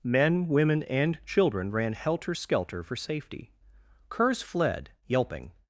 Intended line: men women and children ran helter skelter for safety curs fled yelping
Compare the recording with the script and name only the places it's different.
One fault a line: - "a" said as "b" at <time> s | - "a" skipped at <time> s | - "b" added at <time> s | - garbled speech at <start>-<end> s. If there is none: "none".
none